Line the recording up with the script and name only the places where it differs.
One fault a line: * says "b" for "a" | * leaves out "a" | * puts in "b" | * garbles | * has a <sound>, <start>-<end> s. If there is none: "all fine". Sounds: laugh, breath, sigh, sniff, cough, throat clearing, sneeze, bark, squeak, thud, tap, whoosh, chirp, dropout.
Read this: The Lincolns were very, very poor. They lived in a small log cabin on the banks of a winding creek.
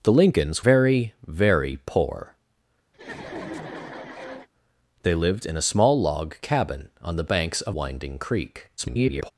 * leaves out "were"
* has a laugh, 2.9-4.5 s
* leaves out "a"
* garbles